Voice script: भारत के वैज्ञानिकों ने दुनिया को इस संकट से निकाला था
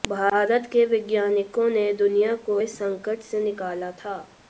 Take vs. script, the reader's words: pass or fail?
pass